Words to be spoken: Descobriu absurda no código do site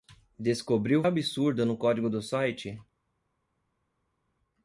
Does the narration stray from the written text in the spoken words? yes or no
no